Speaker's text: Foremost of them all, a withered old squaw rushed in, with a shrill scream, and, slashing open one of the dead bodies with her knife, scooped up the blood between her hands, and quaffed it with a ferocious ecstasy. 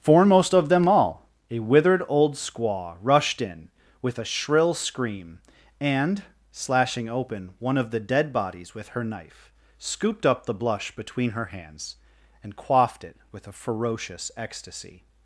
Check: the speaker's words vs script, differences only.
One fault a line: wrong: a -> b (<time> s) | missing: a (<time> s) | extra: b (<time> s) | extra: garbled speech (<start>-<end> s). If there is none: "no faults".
wrong: blood -> blush (10.6 s)